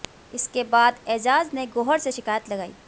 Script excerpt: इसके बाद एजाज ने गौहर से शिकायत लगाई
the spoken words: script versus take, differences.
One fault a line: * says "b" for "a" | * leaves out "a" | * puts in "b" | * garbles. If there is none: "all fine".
all fine